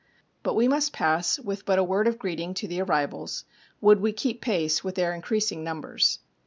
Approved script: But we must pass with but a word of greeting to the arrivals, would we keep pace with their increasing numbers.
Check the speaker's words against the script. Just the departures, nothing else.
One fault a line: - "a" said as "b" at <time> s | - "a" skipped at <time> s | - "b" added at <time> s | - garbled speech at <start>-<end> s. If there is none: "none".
none